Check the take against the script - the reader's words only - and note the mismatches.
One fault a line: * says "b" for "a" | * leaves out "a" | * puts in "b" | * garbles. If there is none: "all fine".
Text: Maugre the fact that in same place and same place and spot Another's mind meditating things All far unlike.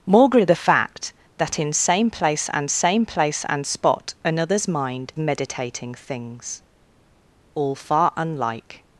all fine